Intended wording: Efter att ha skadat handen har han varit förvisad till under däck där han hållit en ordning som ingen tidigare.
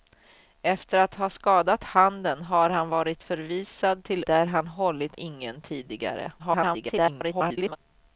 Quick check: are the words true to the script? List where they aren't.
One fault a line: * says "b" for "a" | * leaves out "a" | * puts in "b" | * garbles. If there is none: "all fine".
* leaves out "under däck"
* leaves out "en ordning som"
* garbles